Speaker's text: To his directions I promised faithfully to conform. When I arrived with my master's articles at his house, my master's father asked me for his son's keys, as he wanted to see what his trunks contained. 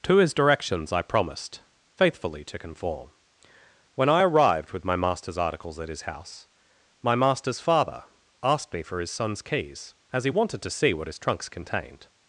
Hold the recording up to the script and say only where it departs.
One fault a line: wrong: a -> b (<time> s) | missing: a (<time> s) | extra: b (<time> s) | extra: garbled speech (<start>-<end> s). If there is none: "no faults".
no faults